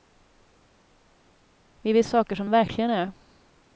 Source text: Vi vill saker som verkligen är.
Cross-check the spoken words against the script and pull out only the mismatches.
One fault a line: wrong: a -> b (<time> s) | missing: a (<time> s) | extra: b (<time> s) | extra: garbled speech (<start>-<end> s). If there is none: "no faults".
no faults